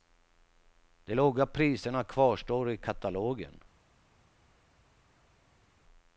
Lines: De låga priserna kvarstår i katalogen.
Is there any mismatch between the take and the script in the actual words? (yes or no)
no